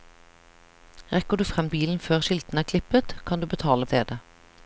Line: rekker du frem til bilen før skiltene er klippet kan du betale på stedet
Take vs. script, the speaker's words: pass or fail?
fail